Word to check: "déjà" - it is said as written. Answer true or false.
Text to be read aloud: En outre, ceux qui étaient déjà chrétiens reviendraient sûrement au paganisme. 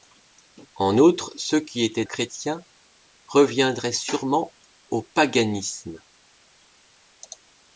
false